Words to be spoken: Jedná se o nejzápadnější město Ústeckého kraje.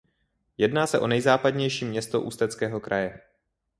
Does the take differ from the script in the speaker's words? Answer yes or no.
no